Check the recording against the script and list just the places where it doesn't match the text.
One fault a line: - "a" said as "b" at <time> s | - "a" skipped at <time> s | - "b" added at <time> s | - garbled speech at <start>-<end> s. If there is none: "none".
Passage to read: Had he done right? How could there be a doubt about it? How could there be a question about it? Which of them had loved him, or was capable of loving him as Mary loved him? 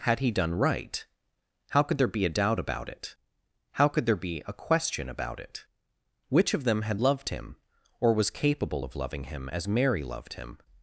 none